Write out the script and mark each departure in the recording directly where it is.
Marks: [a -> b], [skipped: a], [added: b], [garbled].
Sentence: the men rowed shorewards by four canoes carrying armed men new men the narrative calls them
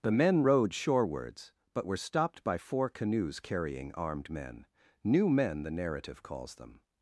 the men rowed shorewards [added: but were stopped] by four canoes carrying armed men new men the narrative calls them